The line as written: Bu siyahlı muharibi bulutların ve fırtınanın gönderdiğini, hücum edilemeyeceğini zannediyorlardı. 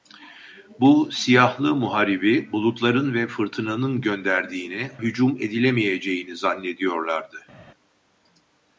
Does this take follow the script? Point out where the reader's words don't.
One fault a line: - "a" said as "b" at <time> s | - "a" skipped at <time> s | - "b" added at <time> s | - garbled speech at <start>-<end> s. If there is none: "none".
none